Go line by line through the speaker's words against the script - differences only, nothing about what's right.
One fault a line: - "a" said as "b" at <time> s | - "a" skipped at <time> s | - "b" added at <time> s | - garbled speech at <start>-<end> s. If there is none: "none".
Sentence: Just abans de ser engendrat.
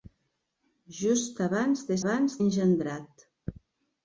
- "ser" said as "abans" at 2.0 s